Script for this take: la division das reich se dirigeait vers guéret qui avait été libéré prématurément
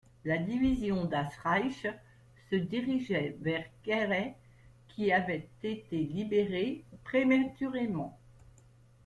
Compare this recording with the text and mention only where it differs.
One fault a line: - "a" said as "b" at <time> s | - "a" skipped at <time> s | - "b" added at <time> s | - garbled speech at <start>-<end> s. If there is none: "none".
none